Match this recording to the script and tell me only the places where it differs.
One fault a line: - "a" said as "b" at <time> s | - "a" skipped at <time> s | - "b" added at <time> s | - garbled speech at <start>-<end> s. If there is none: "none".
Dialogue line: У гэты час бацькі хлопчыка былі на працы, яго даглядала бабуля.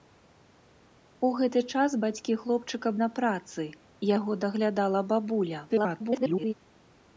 - "былі" skipped at 2.9 s
- garbled speech at 5.7-6.5 s